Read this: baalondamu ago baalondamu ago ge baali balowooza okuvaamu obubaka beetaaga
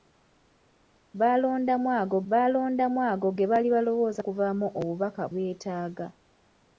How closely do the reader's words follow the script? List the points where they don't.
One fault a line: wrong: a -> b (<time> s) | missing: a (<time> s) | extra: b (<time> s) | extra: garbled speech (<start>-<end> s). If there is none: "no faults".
no faults